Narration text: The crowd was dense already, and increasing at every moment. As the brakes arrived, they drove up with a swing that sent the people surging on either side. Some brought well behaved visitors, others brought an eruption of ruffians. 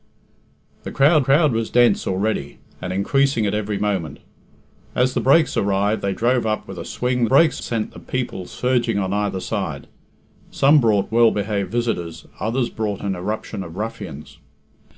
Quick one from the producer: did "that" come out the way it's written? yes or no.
no